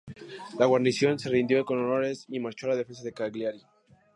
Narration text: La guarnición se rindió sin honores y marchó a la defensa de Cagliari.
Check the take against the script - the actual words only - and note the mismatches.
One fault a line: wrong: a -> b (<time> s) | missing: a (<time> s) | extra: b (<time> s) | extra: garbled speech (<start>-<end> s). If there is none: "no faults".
wrong: sin -> con (1.6 s)